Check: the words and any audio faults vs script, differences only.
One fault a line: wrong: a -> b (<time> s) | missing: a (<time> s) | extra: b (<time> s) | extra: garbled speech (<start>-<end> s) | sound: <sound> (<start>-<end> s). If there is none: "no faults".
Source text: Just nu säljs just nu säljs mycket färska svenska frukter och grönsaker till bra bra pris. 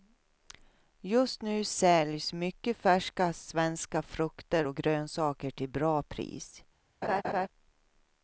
missing: just nu säljs (2.3 s)
missing: bra (6.0 s)
sound: laugh (7.0-7.5 s)